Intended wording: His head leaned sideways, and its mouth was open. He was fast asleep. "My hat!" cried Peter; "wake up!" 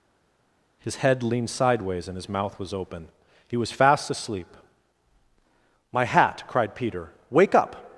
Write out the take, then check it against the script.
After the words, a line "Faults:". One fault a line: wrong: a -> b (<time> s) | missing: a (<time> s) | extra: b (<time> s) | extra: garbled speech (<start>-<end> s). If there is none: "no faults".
His head leaned sideways, and his mouth was open. He was fast asleep. "My hat!" cried Peter; "wake up!"
Faults:
wrong: its -> his (2.2 s)